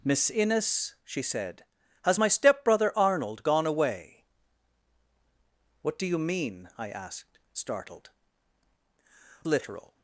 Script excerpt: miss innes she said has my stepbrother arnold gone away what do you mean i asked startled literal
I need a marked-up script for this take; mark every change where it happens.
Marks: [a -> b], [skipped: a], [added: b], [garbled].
miss innes she said has my stepbrother arnold gone away what do you mean i asked startled literal